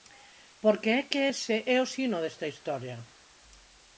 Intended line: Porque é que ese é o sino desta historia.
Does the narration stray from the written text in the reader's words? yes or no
no